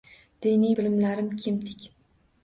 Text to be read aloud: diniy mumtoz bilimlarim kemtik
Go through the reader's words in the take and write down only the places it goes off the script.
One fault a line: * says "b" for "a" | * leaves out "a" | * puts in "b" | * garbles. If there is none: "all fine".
* leaves out "mumtoz"